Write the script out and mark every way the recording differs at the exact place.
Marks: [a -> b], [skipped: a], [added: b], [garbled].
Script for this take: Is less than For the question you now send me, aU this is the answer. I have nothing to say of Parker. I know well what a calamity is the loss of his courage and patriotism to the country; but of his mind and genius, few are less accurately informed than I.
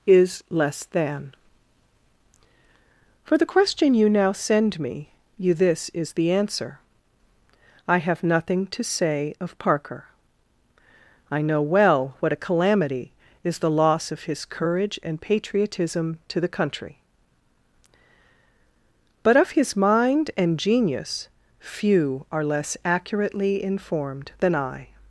Is less than For the question you now send me, [aU -> you] this is the answer. I have nothing to say of Parker. I know well what a calamity is the loss of his courage and patriotism to the country; but of his mind and genius, few are less accurately informed than I.